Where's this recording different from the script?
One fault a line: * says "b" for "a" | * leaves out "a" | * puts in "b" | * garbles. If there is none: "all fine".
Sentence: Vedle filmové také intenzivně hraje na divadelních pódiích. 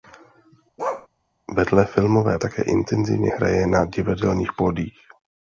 all fine